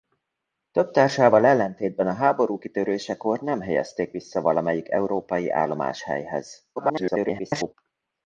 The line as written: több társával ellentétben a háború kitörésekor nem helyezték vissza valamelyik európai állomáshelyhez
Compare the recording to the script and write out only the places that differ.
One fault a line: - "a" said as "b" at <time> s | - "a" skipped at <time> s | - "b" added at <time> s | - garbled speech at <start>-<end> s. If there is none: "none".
- garbled speech at 6.8-7.7 s